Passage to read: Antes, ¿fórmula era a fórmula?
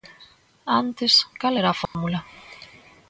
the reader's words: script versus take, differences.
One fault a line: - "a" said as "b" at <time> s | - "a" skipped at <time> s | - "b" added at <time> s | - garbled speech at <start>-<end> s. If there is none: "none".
- "fórmula" said as "cal" at 1.4 s